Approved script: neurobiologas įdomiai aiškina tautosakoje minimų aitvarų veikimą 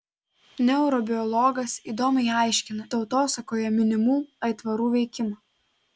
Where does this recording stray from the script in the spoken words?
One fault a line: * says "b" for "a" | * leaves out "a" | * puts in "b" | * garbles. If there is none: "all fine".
all fine